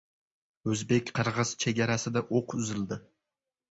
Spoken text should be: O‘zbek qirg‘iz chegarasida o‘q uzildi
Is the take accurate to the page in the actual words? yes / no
yes